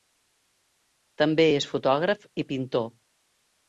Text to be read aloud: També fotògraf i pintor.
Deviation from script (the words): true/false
true